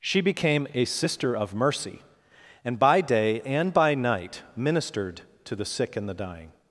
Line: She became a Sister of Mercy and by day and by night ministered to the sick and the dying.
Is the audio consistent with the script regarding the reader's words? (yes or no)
yes